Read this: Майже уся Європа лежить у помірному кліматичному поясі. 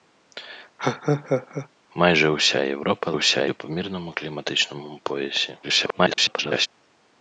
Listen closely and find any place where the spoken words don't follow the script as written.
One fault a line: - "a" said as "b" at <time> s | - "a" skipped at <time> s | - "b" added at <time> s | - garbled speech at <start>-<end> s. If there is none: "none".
- "лежить" said as "уся" at 3.1 s
- garbled speech at 5.6-6.7 s